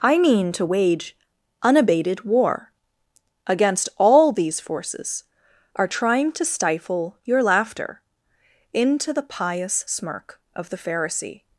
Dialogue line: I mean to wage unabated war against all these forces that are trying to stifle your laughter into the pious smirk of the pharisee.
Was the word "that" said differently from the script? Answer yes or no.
yes